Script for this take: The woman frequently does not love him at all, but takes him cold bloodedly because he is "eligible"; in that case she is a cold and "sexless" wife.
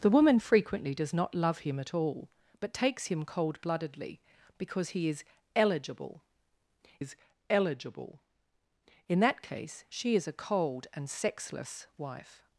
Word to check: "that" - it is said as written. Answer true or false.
true